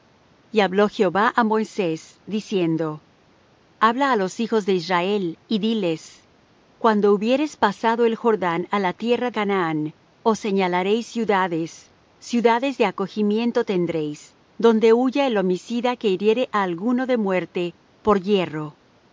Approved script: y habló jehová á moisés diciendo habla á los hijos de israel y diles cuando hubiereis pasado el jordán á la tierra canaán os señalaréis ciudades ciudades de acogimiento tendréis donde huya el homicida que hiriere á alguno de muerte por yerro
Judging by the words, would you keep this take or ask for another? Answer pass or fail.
pass